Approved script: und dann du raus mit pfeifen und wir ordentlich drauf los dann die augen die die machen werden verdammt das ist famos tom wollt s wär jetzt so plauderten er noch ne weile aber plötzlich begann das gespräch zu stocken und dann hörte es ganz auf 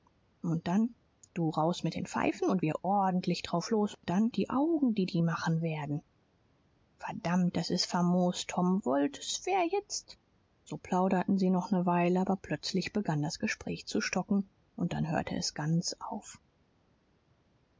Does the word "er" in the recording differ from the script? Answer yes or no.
yes